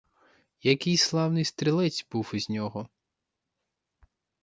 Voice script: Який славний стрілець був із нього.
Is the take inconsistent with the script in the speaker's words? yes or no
no